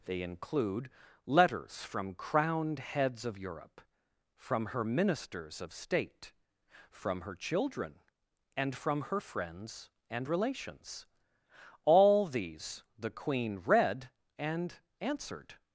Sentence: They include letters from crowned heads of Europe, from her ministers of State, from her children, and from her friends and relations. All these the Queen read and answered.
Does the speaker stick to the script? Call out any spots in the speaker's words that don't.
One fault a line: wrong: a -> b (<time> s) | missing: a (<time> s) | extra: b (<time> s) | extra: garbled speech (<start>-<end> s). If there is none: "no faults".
no faults